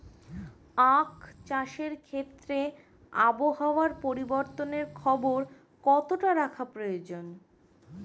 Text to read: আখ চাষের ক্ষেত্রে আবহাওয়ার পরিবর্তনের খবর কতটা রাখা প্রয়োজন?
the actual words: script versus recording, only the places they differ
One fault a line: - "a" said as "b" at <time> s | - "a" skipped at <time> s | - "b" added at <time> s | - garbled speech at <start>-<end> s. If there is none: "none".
none